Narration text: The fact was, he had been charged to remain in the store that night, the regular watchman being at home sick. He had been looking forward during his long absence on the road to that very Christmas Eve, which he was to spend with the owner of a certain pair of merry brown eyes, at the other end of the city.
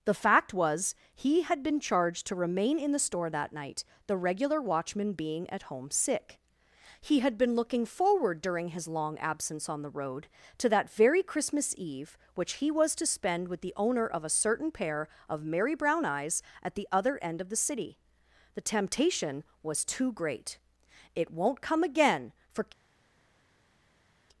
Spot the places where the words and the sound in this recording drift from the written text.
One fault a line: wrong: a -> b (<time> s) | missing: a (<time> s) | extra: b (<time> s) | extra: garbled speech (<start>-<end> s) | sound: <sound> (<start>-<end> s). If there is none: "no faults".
extra: The temptation was too great It won't come again for (18.6 s)